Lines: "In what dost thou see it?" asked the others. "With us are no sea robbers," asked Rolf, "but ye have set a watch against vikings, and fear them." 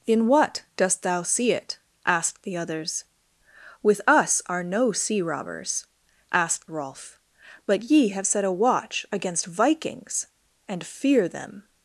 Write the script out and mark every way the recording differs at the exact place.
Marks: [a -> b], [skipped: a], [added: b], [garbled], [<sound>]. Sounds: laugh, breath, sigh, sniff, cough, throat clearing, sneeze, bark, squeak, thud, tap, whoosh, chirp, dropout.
"In what dost thou see it?" asked the others. "With us are no sea robbers," asked Rolf, "but ye have set a watch against vikings, and fear them."